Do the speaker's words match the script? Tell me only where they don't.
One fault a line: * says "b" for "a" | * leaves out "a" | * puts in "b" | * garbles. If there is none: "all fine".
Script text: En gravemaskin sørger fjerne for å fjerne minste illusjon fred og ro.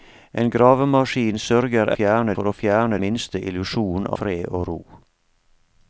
all fine